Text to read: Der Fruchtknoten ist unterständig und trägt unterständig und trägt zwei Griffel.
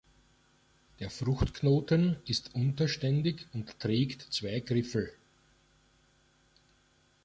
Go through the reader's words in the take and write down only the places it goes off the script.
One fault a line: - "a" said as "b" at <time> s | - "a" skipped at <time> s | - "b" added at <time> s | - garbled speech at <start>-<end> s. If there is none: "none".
- "unterständig und trägt" skipped at 4.3 s